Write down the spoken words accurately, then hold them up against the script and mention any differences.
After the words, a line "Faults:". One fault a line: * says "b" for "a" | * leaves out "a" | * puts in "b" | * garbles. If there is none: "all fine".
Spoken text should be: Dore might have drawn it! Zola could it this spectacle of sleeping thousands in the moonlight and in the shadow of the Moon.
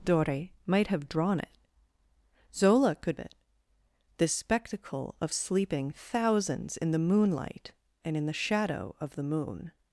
Dore might have drawn it! Zola could it this spectacle of sleeping thousands in the moonlight and in the shadow of the Moon.
Faults:
all fine